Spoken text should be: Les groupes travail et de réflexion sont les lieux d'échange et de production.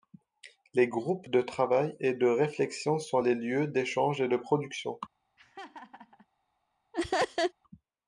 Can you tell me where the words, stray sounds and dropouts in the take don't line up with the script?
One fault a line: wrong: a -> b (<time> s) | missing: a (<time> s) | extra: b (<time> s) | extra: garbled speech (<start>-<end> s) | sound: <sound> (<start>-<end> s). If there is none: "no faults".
extra: de (1.3 s)
sound: laugh (5.4-6.3 s)
sound: laugh (6.9-7.5 s)